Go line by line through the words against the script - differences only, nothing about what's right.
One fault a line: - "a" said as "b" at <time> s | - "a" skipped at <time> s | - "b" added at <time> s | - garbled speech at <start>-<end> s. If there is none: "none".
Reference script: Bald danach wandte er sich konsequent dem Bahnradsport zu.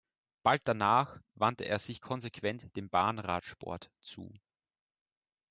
none